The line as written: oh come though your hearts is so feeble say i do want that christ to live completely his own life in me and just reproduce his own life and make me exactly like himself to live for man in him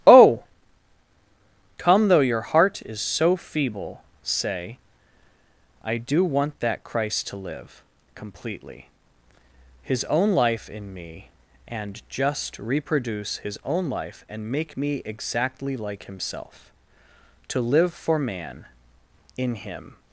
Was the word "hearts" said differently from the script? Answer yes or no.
yes